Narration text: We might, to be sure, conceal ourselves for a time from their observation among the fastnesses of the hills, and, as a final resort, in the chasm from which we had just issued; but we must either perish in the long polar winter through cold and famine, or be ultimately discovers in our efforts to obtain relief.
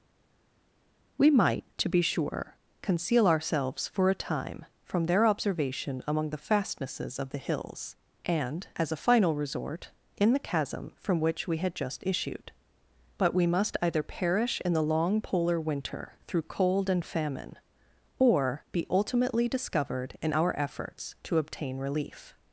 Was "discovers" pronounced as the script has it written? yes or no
no